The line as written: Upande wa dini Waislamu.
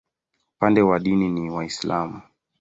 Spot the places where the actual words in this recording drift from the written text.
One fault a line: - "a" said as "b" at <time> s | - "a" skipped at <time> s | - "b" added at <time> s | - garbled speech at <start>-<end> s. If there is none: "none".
- "ni" added at 1.3 s